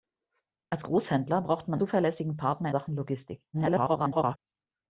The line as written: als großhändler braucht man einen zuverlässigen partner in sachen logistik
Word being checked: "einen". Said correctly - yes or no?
no